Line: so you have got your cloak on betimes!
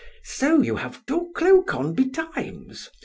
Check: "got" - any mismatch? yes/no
yes